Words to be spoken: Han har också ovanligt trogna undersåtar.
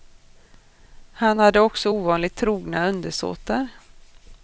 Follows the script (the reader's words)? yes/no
no